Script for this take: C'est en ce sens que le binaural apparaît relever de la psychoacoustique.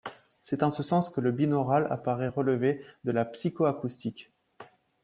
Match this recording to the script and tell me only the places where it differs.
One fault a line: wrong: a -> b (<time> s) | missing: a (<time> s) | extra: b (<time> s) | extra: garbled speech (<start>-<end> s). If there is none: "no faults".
no faults